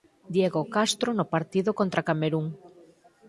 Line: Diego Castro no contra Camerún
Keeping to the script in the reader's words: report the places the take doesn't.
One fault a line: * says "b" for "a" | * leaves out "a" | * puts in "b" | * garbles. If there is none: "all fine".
* puts in "partido"